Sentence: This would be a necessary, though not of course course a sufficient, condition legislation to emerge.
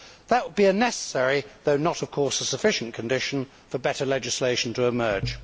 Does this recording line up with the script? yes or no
no